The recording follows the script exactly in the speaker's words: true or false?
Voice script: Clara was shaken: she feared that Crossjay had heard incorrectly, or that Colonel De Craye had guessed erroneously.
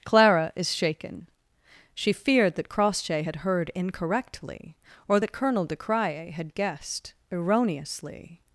false